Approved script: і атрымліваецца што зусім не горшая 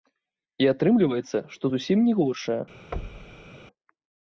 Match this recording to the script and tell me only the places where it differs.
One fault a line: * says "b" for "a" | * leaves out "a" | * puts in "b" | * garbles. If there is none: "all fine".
all fine